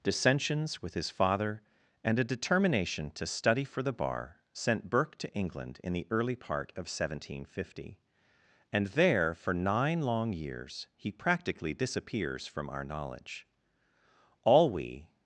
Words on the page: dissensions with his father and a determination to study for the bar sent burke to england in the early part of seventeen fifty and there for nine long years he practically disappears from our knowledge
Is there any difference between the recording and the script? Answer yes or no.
yes